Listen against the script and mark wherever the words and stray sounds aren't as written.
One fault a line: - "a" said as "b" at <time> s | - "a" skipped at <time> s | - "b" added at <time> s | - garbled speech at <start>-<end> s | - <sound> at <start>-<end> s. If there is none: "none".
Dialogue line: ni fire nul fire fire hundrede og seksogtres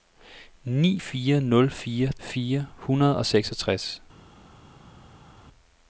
none